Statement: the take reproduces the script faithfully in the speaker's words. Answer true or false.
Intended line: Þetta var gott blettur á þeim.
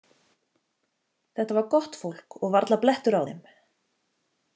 false